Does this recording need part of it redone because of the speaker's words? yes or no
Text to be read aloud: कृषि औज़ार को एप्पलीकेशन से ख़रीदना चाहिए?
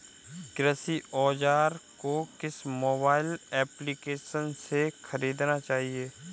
yes